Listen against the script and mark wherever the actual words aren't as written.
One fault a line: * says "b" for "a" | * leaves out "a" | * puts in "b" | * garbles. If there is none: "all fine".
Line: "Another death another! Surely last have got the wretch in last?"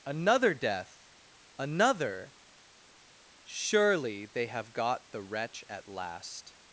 * says "they" for "last"
* says "at" for "in"